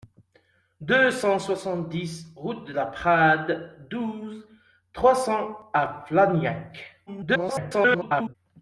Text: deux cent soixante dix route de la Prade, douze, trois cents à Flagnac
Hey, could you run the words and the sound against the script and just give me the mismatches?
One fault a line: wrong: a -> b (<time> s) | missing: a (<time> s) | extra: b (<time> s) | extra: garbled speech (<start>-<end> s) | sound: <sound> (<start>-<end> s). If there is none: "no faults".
extra: garbled speech (7.1-8.4 s)